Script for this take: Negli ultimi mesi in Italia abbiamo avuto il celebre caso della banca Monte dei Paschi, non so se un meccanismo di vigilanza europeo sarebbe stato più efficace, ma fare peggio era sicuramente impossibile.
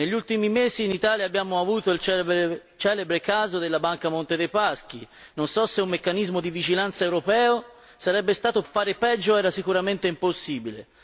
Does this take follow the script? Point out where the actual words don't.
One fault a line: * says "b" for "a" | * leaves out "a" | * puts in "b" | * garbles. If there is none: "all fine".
* leaves out "più efficace ma"